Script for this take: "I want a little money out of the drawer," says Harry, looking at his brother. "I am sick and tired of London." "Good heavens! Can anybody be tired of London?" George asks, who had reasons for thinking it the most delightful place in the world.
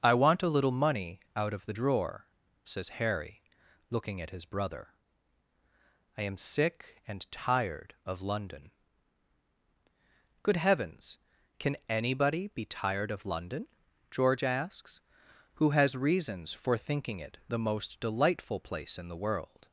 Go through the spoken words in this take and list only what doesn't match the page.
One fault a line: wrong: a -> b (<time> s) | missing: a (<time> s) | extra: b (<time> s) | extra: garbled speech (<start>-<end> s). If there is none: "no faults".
wrong: had -> has (15.7 s)